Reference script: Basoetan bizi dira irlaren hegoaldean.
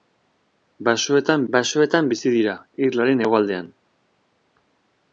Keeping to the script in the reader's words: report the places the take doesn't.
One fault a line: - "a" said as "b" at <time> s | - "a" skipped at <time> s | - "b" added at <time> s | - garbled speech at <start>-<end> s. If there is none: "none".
- "basoetan" added at 1.5 s